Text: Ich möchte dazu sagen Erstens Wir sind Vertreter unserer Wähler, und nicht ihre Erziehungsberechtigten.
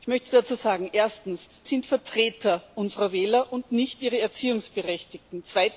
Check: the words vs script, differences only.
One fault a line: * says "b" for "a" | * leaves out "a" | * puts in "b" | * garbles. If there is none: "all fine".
* leaves out "Wir"